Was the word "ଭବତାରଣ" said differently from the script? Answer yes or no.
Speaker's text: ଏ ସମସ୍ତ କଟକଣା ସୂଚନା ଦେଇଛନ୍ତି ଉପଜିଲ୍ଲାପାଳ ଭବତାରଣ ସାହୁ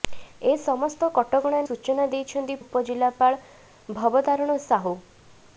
no